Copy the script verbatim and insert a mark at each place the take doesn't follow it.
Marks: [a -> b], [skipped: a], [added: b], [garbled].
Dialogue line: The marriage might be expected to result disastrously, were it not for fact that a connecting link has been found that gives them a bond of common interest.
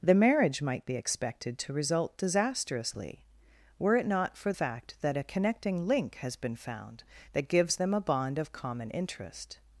The marriage might be expected to result disastrously, were it not for fact that a connecting link has been found that gives them a bond of common interest.